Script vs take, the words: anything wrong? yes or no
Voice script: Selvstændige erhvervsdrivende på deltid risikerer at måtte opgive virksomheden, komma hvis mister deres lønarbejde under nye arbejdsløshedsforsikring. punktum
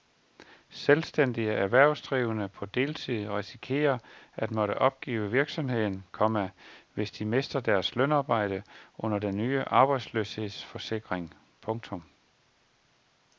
yes